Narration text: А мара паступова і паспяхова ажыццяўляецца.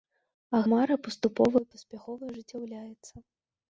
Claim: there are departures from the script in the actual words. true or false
false